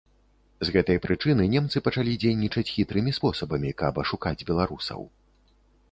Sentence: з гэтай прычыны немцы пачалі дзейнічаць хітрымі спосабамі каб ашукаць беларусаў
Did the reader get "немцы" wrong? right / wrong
right